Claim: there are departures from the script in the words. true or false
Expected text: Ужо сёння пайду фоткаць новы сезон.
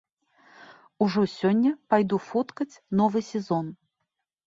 false